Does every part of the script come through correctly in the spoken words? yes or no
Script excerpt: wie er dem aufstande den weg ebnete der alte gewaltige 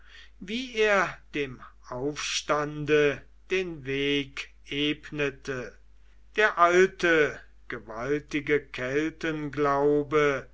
yes